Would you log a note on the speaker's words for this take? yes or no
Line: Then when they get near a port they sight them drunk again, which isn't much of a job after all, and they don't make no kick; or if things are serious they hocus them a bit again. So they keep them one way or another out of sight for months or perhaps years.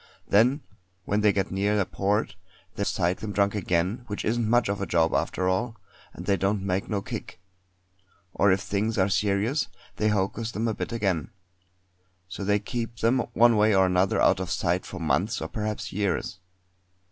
no